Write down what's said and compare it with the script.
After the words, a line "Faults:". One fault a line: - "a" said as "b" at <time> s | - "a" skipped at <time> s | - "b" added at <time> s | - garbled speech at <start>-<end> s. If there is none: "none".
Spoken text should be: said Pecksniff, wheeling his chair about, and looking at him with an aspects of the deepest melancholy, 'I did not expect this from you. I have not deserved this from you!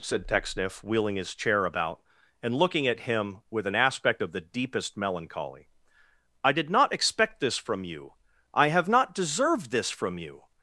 said Pecksniff, wheeling his chair about, and looking at him with an aspect of the deepest melancholy, 'I did not expect this from you. I have not deserved this from you!
Faults:
- "aspects" said as "aspect" at 3.8 s